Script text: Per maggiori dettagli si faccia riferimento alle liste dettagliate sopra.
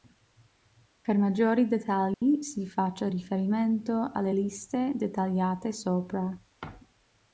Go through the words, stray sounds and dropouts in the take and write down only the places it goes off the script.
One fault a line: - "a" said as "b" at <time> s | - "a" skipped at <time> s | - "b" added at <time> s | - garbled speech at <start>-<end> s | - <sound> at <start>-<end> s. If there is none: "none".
- dropout at 2.1-2.2 s